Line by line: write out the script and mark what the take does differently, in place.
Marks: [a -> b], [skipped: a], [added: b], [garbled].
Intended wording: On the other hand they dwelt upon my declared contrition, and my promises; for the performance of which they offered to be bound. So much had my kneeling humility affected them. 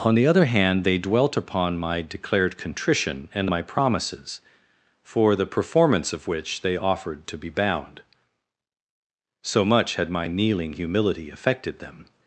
On the other hand they dwelt upon my declared contrition, and my promises; for the performance of which they offered to be bound. So much had my kneeling humility affected them.